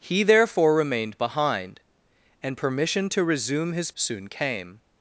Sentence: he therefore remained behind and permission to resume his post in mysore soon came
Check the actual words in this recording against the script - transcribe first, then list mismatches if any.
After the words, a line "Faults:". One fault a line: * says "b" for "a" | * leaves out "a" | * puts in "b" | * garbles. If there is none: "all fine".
he therefore remained behind and permission to resume his soon came
Faults:
* leaves out "post in mysore"